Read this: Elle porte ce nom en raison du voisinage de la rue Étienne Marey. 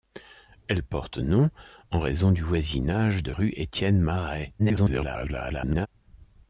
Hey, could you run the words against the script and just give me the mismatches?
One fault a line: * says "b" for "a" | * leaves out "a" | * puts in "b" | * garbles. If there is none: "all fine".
* leaves out "ce"
* leaves out "la"
* garbles